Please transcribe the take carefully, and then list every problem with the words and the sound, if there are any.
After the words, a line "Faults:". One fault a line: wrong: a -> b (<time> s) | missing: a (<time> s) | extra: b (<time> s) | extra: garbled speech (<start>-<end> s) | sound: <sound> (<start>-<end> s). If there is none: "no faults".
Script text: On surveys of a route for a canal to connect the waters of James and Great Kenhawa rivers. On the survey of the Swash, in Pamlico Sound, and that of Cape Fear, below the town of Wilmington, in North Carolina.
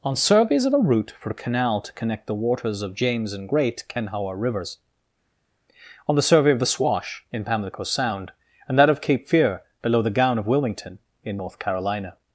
On surveys of a route for a canal to connect the waters of James and Great Kenhawa rivers. On the survey of the Swash, in Pamlico Sound, and that of Cape Fear, below the gown of Wilmington, in North Carolina.
Faults:
wrong: town -> gown (10.1 s)